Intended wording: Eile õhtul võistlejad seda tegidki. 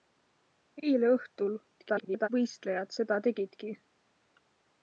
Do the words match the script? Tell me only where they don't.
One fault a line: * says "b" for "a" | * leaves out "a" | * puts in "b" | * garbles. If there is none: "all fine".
* garbles